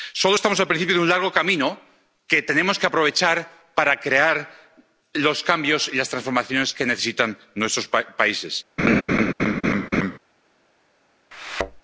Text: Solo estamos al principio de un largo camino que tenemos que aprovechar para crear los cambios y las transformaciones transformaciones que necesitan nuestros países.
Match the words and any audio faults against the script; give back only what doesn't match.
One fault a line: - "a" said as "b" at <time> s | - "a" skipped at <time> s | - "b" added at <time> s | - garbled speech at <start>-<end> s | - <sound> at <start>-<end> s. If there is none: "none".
- "transformaciones" skipped at 6.7 s
- laugh at 8.8-10.2 s
- thud at 11.3-11.8 s